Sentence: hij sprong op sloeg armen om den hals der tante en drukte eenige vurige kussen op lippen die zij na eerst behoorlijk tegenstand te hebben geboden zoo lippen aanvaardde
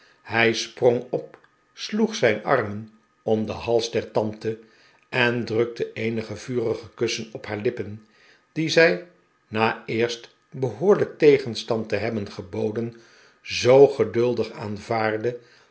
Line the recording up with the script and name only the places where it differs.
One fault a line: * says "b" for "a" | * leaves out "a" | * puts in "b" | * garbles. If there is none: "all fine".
* puts in "zijn"
* puts in "haar"
* says "geduldig" for "lippen"